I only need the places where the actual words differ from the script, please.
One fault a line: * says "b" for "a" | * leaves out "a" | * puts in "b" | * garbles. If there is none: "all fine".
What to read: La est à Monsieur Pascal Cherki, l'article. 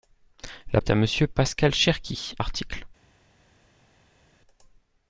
all fine